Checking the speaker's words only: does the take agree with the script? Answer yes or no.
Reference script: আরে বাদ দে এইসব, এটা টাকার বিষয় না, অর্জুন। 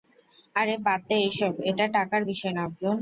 yes